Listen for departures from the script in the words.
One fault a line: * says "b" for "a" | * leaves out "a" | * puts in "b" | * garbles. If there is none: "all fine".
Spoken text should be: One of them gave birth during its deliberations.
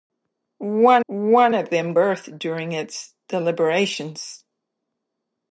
* puts in "one"
* leaves out "gave"